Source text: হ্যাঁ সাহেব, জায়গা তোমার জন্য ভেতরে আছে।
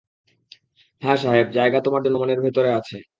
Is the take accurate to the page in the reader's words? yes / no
no